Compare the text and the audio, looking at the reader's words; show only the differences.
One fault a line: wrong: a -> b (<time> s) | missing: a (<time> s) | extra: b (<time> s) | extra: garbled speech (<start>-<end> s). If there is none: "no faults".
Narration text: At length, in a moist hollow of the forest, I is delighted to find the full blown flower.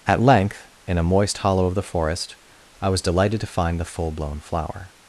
wrong: is -> was (2.9 s)